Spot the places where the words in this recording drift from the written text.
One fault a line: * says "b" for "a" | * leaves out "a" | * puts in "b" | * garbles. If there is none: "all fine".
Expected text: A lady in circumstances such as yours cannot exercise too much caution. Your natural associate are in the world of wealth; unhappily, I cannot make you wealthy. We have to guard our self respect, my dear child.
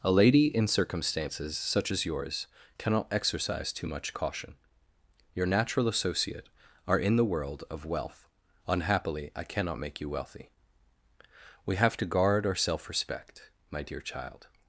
all fine